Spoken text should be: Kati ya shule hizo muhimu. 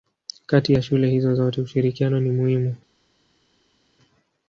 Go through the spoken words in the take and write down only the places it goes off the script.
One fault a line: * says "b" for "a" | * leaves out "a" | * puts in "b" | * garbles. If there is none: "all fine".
* puts in "zote ushirikiano ni"